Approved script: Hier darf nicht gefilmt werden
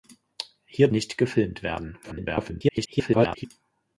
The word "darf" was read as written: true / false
false